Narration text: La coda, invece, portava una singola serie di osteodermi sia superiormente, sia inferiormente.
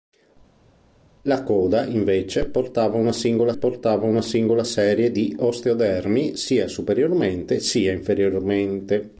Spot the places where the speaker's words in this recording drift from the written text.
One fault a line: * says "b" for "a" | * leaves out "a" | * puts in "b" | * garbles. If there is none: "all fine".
* puts in "portava una singola"